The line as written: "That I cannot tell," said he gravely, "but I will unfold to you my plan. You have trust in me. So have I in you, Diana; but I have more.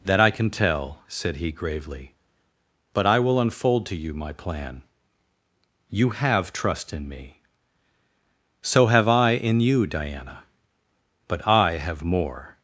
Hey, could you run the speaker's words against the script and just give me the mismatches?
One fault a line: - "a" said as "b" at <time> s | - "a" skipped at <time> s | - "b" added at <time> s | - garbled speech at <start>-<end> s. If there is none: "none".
- "cannot" said as "can" at 0.3 s